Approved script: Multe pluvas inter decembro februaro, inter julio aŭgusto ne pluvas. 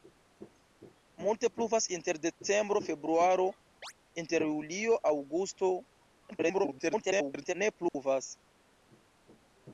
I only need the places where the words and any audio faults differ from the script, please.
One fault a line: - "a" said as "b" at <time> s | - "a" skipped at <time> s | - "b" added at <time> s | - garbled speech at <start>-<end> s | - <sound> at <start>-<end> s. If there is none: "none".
- chirp at 3.8-3.9 s
- garbled speech at 6.3-7.5 s
- dropout at 7.9-7.9 s